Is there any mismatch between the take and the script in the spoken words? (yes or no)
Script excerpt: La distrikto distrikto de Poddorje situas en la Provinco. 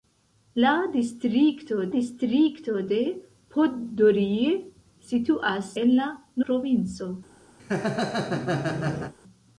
no